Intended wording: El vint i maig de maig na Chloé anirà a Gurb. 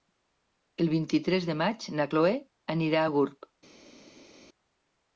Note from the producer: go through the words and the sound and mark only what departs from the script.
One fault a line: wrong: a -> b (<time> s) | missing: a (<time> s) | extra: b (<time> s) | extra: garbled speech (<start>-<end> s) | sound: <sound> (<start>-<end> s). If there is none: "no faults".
wrong: maig -> tres (1.3 s)